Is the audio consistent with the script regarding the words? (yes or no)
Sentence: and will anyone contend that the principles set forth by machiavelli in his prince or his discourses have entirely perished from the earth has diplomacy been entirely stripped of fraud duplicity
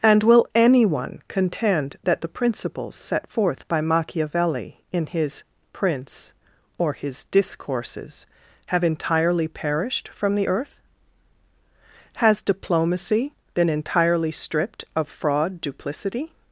yes